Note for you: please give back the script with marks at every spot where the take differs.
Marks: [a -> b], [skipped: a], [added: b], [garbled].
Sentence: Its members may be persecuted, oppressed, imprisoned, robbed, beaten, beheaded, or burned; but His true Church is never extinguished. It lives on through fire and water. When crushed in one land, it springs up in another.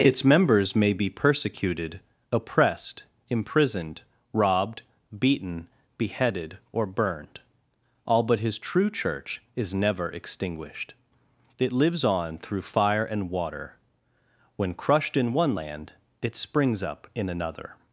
Its members may be persecuted, oppressed, imprisoned, robbed, beaten, beheaded, or burned; [added: all] but His true Church is never extinguished. It lives on through fire and water. When crushed in one land, it springs up in another.